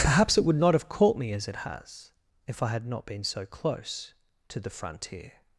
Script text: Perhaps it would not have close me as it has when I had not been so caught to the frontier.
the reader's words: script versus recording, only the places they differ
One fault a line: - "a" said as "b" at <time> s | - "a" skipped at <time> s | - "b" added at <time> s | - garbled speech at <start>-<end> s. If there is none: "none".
- "close" said as "caught" at 0.9 s
- "when" said as "if" at 2.5 s
- "caught" said as "close" at 3.4 s